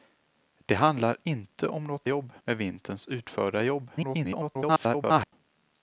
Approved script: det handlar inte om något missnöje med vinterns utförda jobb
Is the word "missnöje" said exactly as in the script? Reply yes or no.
no